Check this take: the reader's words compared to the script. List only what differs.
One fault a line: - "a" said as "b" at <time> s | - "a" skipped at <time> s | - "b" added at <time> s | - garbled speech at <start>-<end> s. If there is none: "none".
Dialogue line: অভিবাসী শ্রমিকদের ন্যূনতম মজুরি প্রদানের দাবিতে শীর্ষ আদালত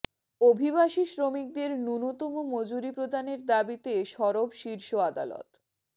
- "সরব" added at 4.1 s